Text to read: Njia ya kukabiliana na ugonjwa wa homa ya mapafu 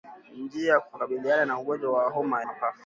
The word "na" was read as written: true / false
true